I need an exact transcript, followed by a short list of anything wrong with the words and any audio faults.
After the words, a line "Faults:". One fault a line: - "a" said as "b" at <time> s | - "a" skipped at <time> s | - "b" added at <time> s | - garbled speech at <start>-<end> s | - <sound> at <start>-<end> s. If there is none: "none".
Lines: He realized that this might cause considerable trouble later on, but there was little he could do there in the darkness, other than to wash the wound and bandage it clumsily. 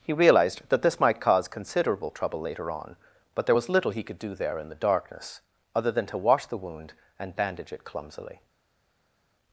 He realized that this might cause considerable trouble later on, but there was little he could do there in the darkness, other than to wash the wound and bandage it clumsily.
Faults:
none